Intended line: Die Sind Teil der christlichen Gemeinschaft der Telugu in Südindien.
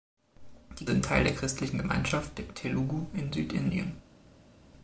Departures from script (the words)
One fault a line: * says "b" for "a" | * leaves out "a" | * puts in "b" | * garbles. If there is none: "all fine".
all fine